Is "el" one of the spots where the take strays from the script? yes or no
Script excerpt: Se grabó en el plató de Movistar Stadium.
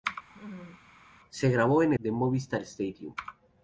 yes